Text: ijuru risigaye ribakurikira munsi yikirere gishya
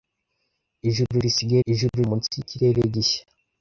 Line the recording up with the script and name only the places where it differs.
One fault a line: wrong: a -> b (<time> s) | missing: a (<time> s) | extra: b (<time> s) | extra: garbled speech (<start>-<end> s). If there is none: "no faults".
wrong: ribakurikira -> ijuru (1.7 s)